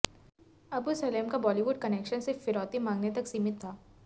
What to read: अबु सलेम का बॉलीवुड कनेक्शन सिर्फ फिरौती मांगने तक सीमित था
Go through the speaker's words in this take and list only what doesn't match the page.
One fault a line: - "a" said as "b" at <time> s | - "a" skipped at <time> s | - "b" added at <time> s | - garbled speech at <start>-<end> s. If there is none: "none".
none